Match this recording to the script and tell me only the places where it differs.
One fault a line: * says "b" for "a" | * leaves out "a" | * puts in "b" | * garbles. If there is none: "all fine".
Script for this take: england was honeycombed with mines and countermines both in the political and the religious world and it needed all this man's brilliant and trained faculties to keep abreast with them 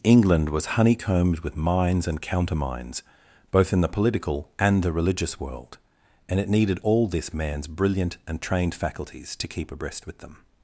all fine